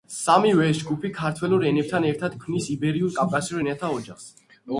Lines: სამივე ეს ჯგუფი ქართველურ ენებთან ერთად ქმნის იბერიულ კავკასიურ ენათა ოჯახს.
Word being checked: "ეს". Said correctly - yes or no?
yes